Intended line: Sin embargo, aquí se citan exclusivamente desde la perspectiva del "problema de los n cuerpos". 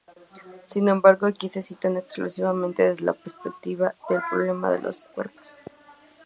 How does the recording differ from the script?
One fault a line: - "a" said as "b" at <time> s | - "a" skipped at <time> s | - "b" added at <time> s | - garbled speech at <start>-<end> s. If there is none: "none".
- "n" skipped at 5.1 s